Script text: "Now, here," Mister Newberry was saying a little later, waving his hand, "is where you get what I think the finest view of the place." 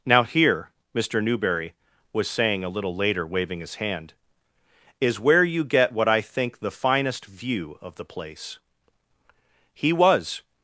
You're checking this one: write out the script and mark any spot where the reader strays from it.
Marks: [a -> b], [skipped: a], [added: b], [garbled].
"Now, here," Mister Newberry was saying a little later, waving his hand, "is where you get what I think the finest view of the place." [added: He was]